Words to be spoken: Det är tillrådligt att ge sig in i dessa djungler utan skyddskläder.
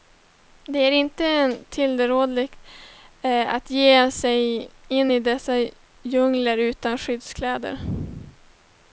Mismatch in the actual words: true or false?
true